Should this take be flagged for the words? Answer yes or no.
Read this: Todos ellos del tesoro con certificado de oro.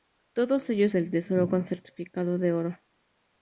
no